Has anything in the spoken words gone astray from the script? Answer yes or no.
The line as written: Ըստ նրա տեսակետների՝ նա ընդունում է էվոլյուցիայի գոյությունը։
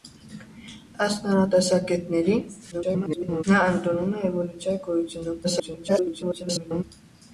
yes